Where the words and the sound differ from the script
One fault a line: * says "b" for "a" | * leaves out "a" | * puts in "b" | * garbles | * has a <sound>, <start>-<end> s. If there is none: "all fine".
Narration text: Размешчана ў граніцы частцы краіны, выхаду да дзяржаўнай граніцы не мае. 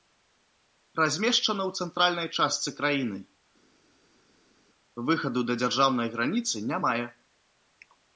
* says "цэнтральнай" for "граніцы"